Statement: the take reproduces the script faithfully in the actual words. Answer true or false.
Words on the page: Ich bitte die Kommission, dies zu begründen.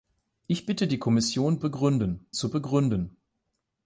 false